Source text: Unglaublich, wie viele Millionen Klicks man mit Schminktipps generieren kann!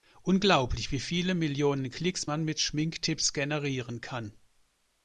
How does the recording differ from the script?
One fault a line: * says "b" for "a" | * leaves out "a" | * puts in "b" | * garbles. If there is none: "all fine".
all fine